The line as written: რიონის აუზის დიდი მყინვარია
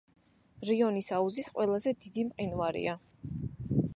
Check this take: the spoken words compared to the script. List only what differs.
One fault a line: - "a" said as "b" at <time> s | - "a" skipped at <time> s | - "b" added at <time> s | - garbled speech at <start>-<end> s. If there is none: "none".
- "ყველაზე" added at 1.6 s